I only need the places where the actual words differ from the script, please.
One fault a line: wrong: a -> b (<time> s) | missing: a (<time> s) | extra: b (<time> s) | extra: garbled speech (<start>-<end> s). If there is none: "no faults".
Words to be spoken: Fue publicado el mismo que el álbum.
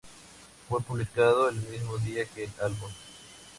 extra: día (2.0 s)